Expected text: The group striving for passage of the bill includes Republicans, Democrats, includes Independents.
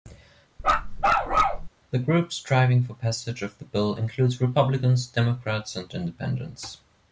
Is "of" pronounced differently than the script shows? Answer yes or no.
no